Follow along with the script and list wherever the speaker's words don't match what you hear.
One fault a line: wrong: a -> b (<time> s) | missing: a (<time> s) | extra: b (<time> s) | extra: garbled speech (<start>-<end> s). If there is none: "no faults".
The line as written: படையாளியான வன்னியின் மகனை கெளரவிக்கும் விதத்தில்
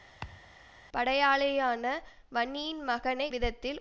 missing: கெளரவிக்கும் (3.3 s)